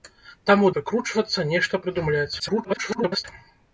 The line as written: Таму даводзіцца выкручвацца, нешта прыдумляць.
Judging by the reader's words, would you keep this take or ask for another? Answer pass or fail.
fail